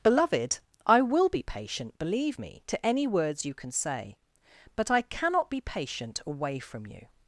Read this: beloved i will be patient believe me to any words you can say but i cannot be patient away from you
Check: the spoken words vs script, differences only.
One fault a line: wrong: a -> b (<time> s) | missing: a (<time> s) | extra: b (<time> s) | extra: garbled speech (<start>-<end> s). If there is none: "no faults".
no faults